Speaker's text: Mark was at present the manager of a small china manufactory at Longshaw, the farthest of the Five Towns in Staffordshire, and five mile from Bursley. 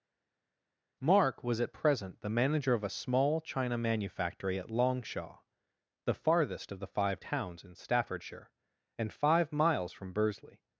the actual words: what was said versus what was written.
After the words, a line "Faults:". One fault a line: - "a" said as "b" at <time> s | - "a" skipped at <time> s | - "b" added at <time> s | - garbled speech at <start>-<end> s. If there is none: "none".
Mark was at present the manager of a small china manufactory at Longshaw, the farthest of the Five Towns in Staffordshire, and five miles from Bursley.
Faults:
- "mile" said as "miles" at 9.5 s